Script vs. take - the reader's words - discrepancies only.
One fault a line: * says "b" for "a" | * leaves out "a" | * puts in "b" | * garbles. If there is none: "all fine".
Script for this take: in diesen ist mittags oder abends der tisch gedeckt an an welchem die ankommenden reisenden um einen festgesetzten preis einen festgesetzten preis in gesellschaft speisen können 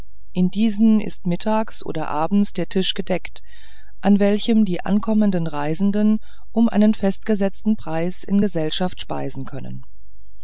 * leaves out "an"
* leaves out "einen festgesetzten preis"